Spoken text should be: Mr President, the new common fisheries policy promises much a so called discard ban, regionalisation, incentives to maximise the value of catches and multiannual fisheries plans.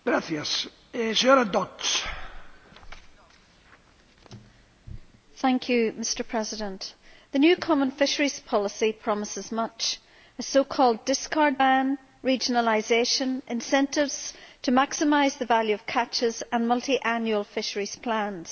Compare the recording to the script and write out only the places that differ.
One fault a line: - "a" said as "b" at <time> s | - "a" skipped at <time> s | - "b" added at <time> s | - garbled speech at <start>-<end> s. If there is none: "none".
none